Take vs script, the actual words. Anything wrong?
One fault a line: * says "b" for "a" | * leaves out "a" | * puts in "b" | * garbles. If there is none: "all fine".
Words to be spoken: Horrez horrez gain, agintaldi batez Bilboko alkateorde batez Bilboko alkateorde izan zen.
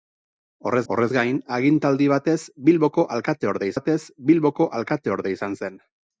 all fine